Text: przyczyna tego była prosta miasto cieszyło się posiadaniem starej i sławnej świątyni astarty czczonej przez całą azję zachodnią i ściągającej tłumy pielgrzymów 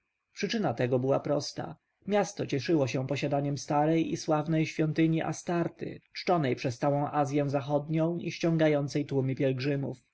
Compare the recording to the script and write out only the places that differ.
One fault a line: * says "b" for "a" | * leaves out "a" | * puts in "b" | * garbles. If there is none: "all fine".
all fine